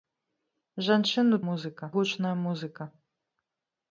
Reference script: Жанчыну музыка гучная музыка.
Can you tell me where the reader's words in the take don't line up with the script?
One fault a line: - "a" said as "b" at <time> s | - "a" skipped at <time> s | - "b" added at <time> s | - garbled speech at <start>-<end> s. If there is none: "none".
none